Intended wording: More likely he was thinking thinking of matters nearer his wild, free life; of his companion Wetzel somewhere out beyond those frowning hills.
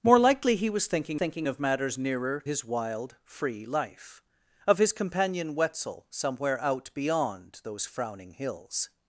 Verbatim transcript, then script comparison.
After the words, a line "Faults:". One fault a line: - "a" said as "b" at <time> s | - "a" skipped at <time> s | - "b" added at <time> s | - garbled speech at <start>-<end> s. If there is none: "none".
More likely he was thinking thinking of matters nearer his wild, free life; of his companion Wetzel somewhere out beyond those frowning hills.
Faults:
none